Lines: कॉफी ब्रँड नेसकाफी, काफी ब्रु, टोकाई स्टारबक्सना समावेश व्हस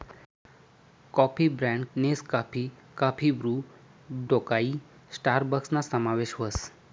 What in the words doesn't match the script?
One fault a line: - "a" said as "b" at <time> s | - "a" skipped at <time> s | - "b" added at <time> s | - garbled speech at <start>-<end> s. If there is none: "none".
none